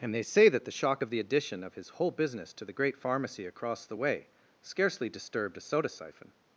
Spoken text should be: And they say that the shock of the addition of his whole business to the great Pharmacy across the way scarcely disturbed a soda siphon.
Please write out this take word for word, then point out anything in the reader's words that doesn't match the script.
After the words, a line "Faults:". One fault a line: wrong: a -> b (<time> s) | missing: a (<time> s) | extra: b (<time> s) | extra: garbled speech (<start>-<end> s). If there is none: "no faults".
And they say that the shock of the addition of his whole business to the great Pharmacy across the way scarcely disturbed a soda siphon.
Faults:
no faults